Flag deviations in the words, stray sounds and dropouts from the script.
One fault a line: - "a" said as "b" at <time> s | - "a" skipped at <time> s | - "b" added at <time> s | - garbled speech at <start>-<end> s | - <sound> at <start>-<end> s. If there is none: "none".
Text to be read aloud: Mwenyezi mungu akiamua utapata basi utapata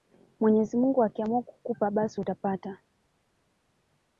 - "utapata" said as "kukupa" at 1.4 s